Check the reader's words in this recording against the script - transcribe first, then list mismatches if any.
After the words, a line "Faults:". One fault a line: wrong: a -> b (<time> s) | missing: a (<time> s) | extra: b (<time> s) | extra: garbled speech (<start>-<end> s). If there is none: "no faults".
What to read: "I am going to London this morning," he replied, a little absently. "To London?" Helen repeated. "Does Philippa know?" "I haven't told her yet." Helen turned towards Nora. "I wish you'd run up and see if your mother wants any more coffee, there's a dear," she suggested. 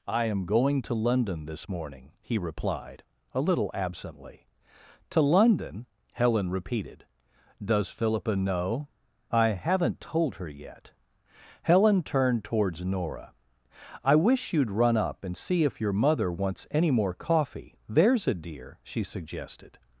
"I am going to London this morning," he replied, a little absently. "To London?" Helen repeated. "Does Philippa know?" "I haven't told her yet." Helen turned towards Nora. "I wish you'd run up and see if your mother wants any more coffee, there's a dear," she suggested.
Faults:
no faults